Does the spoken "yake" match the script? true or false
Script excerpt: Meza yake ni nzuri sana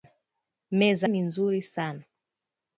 false